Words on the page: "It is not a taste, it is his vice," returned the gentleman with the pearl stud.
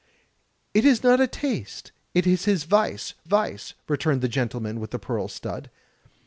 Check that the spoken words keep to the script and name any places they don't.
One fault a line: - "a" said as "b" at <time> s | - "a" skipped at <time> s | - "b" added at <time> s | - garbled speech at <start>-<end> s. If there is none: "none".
- "vice" added at 3.2 s